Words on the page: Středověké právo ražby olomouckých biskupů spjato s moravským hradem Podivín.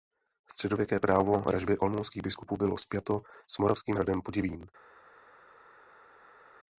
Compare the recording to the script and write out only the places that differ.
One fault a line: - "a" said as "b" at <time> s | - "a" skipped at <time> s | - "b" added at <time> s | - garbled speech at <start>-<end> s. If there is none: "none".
- "bylo" added at 2.6 s